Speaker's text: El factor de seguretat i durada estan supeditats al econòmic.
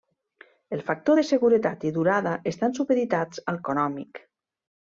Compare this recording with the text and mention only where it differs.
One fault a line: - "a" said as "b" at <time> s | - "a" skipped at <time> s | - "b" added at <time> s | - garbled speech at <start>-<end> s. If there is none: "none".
none